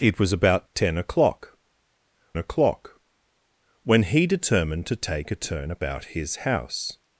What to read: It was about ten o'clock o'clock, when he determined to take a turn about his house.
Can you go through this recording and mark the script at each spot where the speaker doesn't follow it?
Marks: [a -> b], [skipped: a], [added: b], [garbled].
It was about ten o'clock o'clock, when he determined to take a turn about his house.